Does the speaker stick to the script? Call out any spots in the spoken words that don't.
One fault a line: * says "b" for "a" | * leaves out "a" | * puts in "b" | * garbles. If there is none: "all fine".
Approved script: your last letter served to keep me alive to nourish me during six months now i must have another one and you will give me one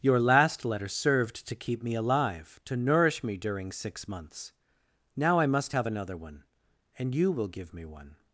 all fine